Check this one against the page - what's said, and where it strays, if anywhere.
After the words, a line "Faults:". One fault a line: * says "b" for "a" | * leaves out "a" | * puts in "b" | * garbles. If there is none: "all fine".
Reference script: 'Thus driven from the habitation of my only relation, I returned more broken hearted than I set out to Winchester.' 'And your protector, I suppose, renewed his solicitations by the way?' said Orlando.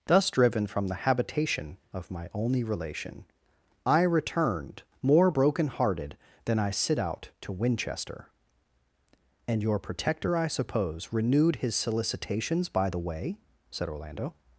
'Thus driven from the habitation of my only relation, I returned more broken hearted than I sit out to Winchester.' 'And your protector, I suppose, renewed his solicitations by the way?' said Orlando.
Faults:
* says "sit" for "set"